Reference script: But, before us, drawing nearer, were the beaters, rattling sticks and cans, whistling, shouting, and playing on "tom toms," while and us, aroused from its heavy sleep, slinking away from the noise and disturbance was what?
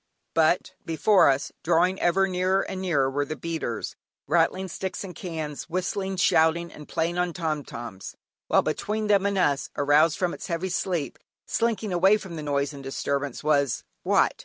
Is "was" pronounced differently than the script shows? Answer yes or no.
no